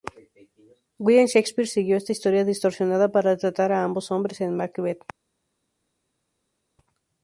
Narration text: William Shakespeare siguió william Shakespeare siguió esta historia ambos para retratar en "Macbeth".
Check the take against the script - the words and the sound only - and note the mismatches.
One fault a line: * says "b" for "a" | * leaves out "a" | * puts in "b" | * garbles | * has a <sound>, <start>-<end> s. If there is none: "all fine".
* leaves out "william Shakespeare siguió"
* says "distorsionada" for "ambos"
* puts in "a ambos hombres"